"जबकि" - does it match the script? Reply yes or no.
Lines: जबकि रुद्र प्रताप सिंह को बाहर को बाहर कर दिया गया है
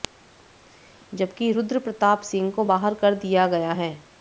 yes